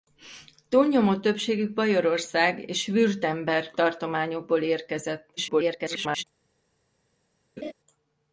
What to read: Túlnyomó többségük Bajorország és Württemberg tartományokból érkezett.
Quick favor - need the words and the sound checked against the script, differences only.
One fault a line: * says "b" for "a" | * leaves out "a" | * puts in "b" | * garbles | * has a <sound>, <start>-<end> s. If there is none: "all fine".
* garbles
* has a laugh, 7.6-7.7 s